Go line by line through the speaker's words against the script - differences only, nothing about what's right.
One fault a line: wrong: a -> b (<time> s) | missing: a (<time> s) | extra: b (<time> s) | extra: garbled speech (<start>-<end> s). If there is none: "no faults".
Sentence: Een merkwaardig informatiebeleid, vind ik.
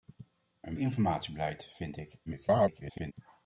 missing: merkwaardig (0.8 s)
extra: garbled speech (2.3-3.1 s)